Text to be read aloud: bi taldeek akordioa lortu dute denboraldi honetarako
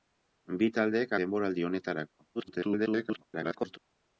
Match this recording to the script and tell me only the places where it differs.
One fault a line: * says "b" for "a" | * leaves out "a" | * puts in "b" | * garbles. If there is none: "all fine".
* leaves out "akordioa lortu dute"
* garbles